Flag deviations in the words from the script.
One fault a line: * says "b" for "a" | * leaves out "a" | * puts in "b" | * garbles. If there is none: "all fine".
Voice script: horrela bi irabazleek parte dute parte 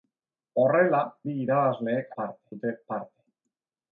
all fine